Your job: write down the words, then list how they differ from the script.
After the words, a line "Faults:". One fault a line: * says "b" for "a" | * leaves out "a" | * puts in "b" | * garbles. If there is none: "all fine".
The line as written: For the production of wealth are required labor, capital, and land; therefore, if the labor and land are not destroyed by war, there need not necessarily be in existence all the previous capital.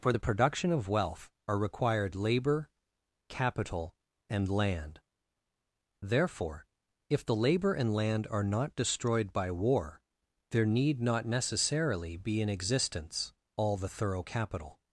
For the production of wealth are required labor, capital, and land; therefore, if the labor and land are not destroyed by war, there need not necessarily be in existence all the thorough capital.
Faults:
* says "thorough" for "previous"